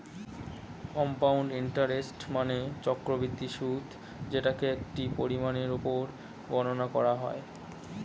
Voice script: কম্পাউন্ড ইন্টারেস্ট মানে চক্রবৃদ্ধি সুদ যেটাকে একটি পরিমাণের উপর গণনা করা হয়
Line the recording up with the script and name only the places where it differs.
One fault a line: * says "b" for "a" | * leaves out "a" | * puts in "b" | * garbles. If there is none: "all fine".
all fine